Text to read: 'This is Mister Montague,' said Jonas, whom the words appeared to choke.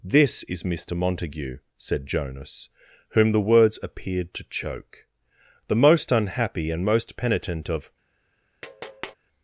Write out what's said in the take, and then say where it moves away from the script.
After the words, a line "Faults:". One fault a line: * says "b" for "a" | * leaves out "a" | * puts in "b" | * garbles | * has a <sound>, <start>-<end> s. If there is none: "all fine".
'This is Mister Montague,' said Jonas, whom the words appeared to choke. 'The most unhappy and most penitent of
Faults:
* puts in "The most unhappy and most penitent of"
* has a tap, 8.6-9.2 s